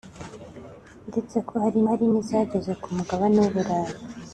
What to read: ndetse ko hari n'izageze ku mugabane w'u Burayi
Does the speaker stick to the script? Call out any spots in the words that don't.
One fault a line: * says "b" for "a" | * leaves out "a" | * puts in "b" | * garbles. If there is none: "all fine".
* puts in "hari"